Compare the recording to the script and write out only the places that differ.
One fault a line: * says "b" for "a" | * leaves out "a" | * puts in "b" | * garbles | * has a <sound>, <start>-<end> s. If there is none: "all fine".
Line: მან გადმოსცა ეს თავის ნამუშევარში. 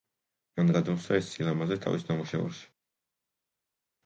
* puts in "სილამაზე"